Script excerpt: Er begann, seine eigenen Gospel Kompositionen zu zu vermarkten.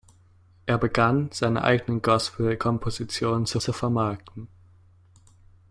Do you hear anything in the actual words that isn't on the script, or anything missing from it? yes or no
no